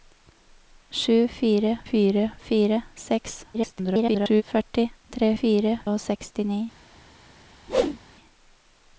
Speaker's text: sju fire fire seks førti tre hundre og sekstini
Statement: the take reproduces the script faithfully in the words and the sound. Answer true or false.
false